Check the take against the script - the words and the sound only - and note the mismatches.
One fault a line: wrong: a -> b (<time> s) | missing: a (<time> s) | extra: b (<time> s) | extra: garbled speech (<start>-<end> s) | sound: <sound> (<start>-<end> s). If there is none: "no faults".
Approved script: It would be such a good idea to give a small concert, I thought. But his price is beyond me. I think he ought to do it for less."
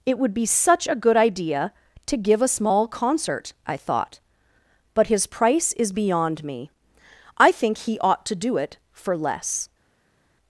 no faults